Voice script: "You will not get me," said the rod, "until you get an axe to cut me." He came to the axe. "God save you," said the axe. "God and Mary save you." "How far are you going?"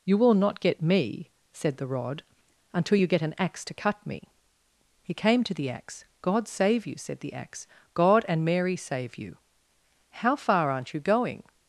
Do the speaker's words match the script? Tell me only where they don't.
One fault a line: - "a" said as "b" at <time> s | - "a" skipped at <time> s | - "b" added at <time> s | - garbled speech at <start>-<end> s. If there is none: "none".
- "are" said as "aren't" at 10.7 s